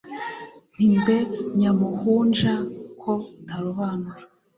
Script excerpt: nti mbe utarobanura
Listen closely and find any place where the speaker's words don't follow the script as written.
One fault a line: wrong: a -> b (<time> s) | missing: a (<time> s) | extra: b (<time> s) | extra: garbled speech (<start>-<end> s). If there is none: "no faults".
extra: nyamuhunja ko (1.6 s)